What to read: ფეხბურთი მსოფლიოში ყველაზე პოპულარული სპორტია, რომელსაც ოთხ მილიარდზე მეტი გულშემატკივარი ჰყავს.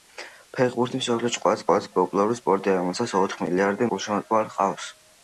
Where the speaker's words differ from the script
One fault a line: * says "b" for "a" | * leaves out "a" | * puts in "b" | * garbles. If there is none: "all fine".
* puts in "ყველაზე"
* leaves out "მეტი"